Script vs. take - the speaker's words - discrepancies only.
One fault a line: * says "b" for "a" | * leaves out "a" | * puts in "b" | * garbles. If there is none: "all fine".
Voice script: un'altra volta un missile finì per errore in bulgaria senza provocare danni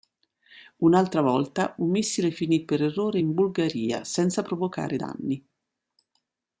all fine